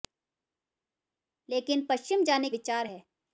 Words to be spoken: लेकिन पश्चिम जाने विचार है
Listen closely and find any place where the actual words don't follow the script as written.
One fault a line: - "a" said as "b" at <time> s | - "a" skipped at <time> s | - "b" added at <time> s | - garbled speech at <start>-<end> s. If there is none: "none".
none